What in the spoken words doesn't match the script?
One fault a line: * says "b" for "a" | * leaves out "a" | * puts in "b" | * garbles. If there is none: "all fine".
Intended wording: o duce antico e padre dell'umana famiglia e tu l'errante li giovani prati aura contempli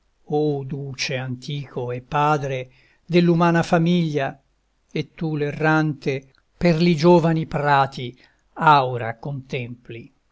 * puts in "per"